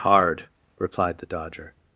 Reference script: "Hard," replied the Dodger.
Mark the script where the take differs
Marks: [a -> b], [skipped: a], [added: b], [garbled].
"Hard," replied the Dodger.